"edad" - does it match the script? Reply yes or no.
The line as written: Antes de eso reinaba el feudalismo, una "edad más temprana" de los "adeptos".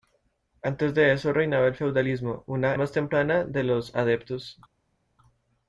no